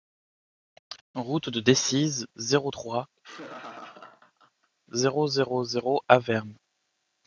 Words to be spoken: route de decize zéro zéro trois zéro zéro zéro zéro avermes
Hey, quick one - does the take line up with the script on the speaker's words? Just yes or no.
no